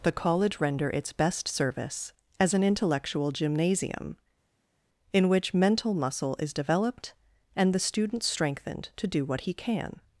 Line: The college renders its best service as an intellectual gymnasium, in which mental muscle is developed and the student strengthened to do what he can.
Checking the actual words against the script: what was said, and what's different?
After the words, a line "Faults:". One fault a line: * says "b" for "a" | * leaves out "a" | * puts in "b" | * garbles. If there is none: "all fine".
The college render its best service as an intellectual gymnasium, in which mental muscle is developed and the student strengthened to do what he can.
Faults:
* says "render" for "renders"